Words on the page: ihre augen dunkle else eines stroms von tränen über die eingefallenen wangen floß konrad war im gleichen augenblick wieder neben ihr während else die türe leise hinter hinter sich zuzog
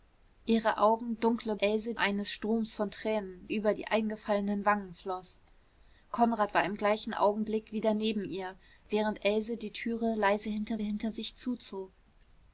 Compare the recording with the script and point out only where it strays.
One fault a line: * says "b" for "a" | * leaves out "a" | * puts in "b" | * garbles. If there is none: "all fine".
all fine